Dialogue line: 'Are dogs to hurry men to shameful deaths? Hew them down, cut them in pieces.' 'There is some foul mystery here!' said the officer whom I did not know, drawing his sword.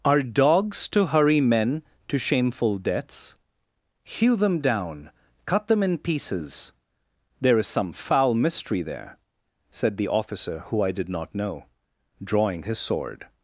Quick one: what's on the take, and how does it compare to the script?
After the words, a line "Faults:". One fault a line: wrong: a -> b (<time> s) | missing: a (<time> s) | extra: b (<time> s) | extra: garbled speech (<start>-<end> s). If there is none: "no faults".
'Are dogs to hurry men to shameful deaths? Hew them down, cut them in pieces.' 'There is some foul mystery there!' said the officer who I did not know, drawing his sword.
Faults:
wrong: here -> there (8.8 s)
wrong: whom -> who (10.7 s)